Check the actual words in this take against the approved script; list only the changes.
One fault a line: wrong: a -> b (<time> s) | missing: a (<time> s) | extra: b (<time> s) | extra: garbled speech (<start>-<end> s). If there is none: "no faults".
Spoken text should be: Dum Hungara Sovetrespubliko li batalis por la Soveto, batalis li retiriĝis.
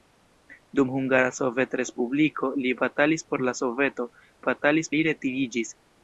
no faults